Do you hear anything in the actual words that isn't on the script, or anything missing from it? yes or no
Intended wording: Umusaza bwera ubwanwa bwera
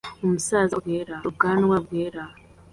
no